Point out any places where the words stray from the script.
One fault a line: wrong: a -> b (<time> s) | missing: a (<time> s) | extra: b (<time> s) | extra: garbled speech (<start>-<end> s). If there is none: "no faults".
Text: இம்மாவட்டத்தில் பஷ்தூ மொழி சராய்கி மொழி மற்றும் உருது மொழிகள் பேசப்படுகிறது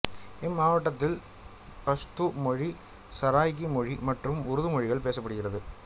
no faults